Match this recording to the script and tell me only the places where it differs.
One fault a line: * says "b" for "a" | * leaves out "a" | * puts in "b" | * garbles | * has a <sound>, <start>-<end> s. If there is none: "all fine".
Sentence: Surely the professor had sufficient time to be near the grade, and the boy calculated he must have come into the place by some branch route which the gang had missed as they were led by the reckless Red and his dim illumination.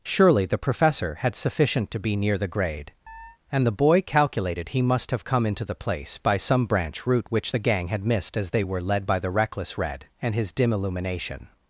* leaves out "time"
* has a chirp, 3.1-3.4 s